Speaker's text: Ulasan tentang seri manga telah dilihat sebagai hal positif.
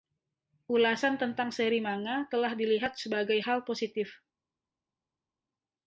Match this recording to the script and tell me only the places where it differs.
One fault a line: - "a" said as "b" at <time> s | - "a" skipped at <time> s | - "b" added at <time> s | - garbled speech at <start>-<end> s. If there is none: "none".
none